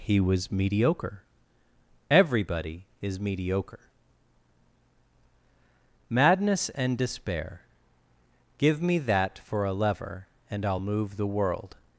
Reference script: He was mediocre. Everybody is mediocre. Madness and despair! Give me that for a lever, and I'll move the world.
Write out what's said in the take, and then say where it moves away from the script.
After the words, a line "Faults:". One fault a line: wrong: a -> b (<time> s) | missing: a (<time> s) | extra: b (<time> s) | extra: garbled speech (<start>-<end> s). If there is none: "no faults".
He was mediocre. Everybody is mediocre. Madness and despair! Give me that for a lever, and I'll move the world.
Faults:
no faults